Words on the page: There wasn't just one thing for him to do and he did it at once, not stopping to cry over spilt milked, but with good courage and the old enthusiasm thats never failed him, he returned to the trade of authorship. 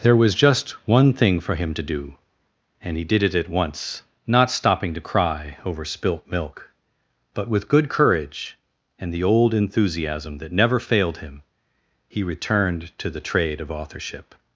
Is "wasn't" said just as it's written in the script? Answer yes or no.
no